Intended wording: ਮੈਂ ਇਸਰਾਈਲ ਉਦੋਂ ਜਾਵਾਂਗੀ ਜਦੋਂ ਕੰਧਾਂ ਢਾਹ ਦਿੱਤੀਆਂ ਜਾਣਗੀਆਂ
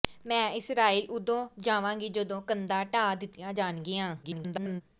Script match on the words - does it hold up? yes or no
no